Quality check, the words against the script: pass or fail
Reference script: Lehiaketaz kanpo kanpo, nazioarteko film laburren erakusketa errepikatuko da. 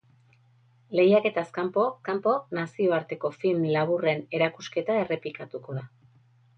pass